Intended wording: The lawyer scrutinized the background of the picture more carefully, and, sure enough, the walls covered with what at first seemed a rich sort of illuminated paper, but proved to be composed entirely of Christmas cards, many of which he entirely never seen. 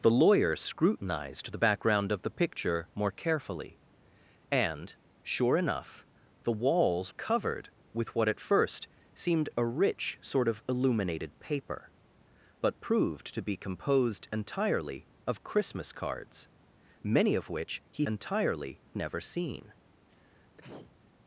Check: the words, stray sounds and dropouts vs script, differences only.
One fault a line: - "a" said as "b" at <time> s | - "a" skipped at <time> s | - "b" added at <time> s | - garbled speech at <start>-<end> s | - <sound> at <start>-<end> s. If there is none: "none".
- sneeze at 20.1-21.0 s